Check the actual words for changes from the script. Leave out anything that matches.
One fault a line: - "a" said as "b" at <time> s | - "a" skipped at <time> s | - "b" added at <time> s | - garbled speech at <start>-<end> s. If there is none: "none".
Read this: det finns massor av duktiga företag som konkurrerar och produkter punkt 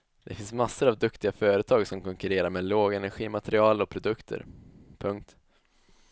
- "med lågenergimaterial" added at 2.5 s